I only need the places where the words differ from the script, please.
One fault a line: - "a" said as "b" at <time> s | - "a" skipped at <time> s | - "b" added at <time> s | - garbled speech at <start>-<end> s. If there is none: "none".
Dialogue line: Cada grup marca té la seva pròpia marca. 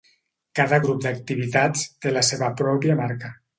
- "marca" said as "d'activitats" at 1.1 s